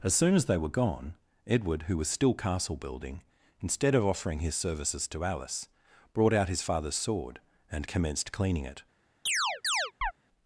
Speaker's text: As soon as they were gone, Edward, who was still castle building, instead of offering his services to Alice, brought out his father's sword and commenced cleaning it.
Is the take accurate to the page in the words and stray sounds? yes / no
no